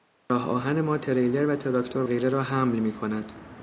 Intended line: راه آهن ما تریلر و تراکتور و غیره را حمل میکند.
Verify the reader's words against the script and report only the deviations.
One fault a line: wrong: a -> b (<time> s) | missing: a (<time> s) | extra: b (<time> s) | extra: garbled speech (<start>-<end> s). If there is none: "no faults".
missing: و (2.0 s)